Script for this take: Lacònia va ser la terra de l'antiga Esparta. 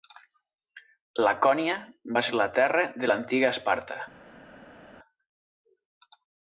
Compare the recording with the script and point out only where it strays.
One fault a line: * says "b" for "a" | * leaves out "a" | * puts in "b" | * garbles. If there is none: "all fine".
all fine